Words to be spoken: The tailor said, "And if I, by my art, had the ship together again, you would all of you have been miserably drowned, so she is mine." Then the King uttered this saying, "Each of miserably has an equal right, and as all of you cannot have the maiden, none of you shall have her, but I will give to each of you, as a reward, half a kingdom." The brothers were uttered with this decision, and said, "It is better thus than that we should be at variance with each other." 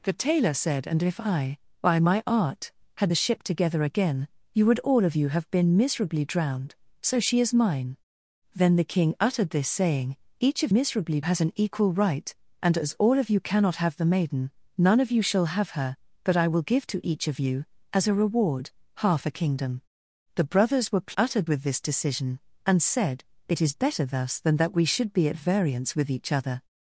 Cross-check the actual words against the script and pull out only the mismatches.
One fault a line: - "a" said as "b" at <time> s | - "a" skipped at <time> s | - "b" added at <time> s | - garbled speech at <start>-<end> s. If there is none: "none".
none